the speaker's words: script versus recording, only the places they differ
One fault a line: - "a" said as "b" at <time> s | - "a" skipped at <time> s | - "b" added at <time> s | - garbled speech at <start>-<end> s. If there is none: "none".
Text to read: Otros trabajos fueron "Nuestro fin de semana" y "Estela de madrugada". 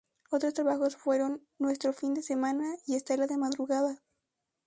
none